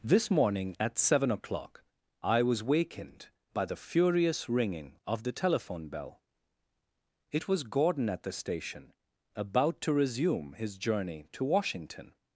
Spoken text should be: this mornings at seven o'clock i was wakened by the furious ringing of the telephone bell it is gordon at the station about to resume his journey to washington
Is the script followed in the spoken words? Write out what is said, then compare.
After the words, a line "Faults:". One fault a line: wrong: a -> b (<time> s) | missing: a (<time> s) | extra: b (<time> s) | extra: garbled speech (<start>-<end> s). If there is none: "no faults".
this morning at seven o'clock i was wakened by the furious ringing of the telephone bell it was gordon at the station about to resume his journey to washington
Faults:
wrong: mornings -> morning (0.3 s)
wrong: is -> was (7.5 s)